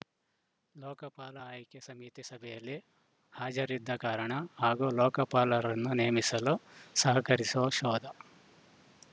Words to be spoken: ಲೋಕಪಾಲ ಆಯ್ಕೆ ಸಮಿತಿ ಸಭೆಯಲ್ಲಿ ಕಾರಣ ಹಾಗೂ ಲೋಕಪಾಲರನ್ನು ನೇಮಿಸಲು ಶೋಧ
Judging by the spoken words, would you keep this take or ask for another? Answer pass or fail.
fail